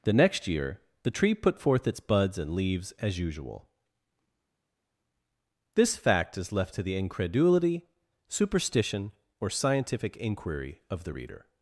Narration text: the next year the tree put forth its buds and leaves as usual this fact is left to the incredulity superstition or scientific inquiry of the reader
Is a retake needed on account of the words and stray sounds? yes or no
no